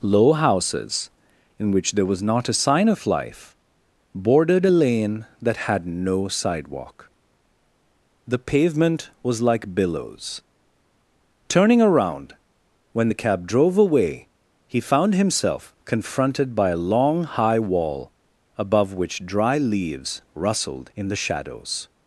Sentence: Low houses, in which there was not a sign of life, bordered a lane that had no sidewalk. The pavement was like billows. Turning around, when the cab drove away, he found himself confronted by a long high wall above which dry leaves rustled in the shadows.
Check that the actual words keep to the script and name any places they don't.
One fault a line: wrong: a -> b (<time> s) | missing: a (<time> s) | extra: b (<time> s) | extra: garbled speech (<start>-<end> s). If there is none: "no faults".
no faults